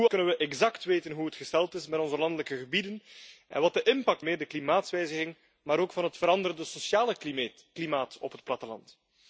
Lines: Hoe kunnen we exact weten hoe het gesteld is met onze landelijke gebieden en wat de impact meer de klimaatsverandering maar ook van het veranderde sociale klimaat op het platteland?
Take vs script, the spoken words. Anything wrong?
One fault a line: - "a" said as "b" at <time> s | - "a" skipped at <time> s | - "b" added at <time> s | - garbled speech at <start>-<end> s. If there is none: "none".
none